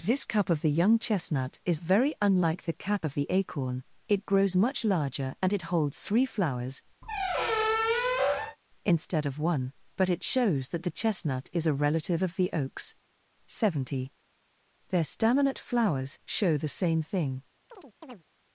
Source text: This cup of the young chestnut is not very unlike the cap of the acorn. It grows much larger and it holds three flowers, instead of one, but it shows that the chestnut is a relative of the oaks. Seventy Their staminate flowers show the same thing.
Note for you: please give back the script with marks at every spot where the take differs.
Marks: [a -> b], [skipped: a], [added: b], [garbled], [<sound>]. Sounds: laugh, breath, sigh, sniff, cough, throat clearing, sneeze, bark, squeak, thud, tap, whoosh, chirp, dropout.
This cup of the young chestnut is [skipped: not] very unlike the cap of the acorn. It grows much larger and it holds three flowers, [squeak] instead of one, but it shows that the chestnut is a relative of the oaks. Seventy Their staminate flowers show the same thing. [chirp]